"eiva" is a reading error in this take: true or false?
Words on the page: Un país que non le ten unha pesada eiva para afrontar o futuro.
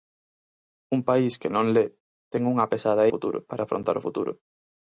true